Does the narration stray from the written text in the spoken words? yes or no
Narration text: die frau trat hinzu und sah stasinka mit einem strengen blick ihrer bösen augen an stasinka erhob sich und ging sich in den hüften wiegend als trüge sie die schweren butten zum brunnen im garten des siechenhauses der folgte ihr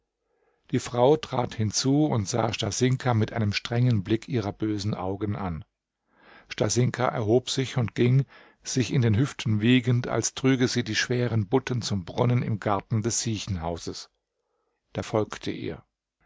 no